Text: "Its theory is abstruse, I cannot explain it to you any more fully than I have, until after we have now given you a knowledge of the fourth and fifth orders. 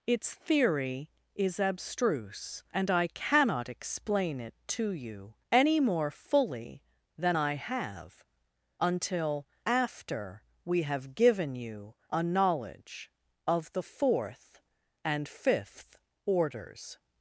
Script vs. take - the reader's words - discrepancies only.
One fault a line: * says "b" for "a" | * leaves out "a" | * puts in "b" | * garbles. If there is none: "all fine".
* puts in "and"
* leaves out "now"